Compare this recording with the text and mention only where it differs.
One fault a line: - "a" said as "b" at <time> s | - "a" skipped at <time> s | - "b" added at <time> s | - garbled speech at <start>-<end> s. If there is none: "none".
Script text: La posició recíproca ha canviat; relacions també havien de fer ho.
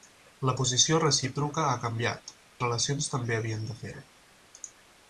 none